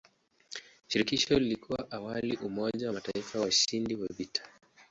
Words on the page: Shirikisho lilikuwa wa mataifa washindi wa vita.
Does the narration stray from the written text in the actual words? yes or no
yes